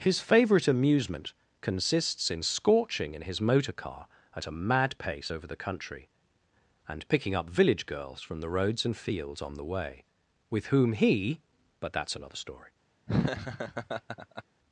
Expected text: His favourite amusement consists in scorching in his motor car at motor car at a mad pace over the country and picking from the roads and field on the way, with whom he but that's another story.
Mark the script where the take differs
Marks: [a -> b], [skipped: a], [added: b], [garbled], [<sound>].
His favourite amusement consists in scorching in his motor car at [skipped: motor car at] a mad pace over the country and picking [added: up village girls] from the roads and [field -> fields] on the way, with whom he but that's another story. [laugh]